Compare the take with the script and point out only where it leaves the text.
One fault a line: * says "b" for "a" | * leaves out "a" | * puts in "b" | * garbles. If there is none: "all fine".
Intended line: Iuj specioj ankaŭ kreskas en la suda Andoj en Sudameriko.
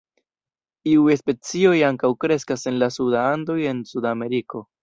all fine